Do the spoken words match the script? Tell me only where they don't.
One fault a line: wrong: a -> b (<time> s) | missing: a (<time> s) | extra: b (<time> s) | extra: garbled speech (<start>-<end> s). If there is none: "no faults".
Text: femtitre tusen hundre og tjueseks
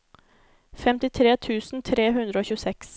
extra: tre (1.9 s)